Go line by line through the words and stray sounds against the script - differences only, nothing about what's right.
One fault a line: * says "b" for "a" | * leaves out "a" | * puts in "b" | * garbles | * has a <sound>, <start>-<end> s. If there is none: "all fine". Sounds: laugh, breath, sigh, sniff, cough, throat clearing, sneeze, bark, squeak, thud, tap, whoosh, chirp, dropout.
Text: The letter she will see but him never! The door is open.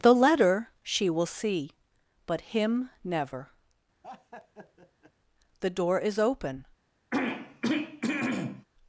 * has a laugh, 4.0-5.1 s
* has a throat clearing, 7.1-8.6 s